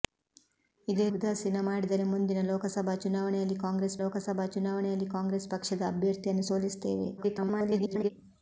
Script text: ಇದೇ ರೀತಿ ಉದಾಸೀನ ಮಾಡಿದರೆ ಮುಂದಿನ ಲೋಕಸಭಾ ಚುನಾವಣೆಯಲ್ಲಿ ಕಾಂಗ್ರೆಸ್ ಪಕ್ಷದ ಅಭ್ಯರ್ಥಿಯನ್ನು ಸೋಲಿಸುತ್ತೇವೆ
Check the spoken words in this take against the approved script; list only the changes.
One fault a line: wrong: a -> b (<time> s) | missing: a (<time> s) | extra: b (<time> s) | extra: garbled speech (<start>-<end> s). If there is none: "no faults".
missing: ರೀತಿ (1.1 s)
extra: ಲೋಕಸಭಾ ಚುನಾವಣೆಯಲ್ಲಿ ಕಾಂಗ್ರೆಸ್ (4.0 s)
extra: garbled speech (7.2-8.1 s)